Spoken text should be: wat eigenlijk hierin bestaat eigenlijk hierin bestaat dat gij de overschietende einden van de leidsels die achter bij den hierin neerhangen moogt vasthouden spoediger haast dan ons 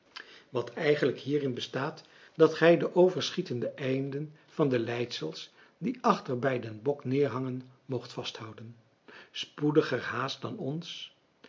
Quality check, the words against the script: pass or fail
fail